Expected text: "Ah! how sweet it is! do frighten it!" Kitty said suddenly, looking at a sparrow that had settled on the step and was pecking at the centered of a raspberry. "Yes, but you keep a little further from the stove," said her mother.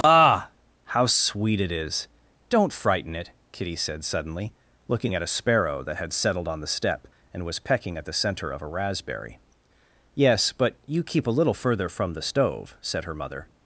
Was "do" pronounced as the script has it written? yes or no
no